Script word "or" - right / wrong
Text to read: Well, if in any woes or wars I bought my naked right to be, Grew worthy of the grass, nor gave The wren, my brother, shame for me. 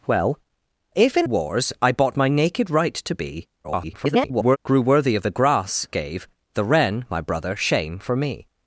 wrong